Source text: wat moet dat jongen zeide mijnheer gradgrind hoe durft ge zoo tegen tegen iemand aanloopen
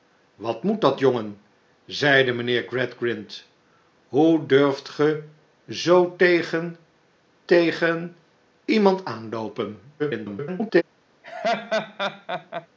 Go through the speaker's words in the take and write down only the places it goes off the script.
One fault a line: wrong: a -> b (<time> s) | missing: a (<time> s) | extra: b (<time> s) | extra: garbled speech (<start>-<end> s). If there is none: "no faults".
extra: garbled speech (10.0-10.8 s)